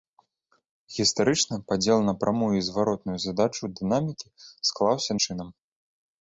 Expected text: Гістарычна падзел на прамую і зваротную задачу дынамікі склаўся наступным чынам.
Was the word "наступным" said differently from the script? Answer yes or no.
yes